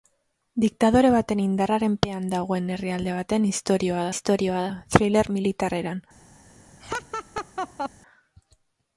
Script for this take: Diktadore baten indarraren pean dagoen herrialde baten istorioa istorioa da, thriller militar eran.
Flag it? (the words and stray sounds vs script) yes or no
yes